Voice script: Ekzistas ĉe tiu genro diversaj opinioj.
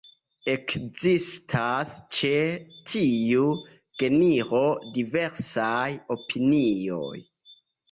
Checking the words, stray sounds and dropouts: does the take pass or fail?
pass